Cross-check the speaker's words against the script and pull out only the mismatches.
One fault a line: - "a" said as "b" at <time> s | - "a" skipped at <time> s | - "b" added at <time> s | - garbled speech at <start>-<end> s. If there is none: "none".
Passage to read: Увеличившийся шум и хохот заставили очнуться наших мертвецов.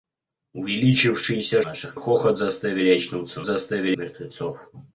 - "шум" said as "наших" at 1.6 s
- "наших" said as "заставили" at 3.4 s